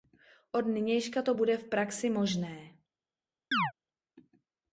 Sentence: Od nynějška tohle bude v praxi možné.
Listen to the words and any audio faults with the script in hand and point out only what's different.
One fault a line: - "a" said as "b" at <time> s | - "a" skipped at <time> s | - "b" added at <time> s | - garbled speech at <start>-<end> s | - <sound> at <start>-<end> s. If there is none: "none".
- "tohle" said as "to" at 1.2 s
- chirp at 3.5-3.7 s